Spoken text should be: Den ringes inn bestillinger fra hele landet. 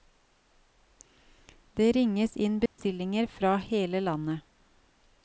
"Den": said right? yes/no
no